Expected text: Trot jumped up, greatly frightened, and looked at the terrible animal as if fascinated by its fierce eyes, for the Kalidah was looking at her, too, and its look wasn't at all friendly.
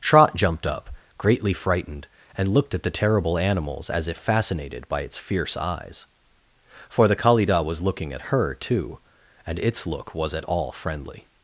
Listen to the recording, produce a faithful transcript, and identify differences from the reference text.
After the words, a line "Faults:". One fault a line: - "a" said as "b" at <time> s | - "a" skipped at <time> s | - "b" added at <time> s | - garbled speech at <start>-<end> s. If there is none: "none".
Trot jumped up, greatly frightened, and looked at the terrible animals as if fascinated by its fierce eyes, for the Kalidah was looking at her, too, and its look was at all friendly.
Faults:
- "animal" said as "animals" at 3.4 s
- "wasn't" said as "was" at 10.1 s